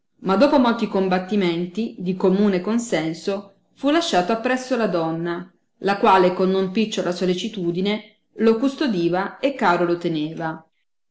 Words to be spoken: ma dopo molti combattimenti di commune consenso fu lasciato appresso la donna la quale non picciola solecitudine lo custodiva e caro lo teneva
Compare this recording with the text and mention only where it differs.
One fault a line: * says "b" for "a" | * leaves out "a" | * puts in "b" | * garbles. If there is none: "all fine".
* puts in "con"